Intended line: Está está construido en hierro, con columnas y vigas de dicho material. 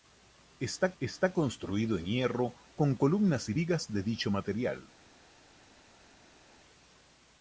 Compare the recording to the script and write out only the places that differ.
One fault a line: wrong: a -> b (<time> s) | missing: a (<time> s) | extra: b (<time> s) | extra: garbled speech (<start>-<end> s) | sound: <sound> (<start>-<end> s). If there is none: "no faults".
no faults